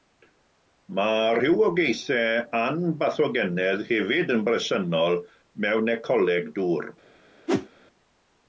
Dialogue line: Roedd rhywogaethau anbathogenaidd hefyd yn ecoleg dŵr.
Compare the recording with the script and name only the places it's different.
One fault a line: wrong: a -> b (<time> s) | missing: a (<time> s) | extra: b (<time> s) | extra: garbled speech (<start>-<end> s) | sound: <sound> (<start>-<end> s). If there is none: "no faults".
wrong: Roedd -> Mae (1.0 s)
extra: bresennol mewn (4.5 s)
sound: whoosh (7.5-7.7 s)